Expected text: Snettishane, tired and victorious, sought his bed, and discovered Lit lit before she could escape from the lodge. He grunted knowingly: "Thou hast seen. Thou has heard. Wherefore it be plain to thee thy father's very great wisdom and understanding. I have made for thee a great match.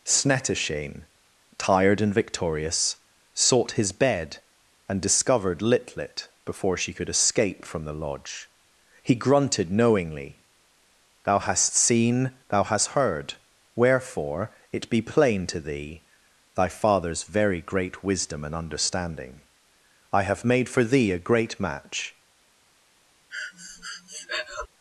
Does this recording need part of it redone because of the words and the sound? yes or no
yes